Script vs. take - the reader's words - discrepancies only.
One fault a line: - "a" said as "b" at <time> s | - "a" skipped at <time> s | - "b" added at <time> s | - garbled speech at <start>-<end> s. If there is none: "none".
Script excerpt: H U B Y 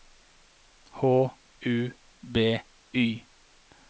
none